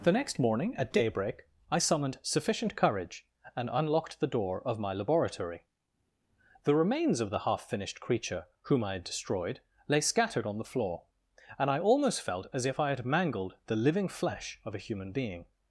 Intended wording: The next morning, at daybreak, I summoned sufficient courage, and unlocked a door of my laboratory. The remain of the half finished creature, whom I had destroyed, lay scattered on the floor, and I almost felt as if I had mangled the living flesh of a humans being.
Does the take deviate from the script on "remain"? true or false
true